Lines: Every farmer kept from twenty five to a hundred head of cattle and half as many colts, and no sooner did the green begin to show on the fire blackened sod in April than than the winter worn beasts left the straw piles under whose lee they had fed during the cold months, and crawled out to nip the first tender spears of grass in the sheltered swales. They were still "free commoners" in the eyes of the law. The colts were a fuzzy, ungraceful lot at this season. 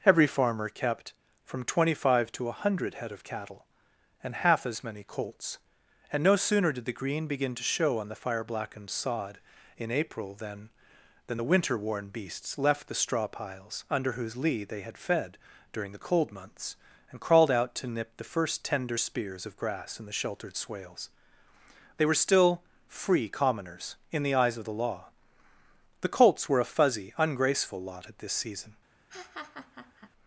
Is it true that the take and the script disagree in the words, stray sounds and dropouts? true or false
true